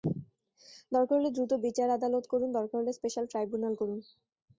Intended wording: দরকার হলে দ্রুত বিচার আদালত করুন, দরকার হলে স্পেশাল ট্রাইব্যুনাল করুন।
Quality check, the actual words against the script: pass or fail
pass